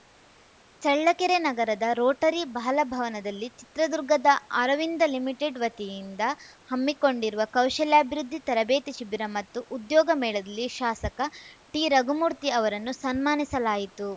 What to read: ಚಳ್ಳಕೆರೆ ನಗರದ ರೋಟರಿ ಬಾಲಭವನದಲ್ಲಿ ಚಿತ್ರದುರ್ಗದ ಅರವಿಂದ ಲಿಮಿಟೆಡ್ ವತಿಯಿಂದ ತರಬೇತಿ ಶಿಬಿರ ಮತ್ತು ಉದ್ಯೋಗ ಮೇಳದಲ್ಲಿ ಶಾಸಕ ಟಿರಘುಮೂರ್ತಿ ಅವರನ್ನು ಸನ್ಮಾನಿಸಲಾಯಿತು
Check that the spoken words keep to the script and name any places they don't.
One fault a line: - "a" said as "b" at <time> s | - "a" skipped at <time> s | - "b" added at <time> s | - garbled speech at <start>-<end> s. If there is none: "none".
- "ಹಮ್ಮಿಕೊಂಡಿರುವ ಕೌಶಲ್ಯಾಭಿವೃದ್ಧಿ" added at 6.7 s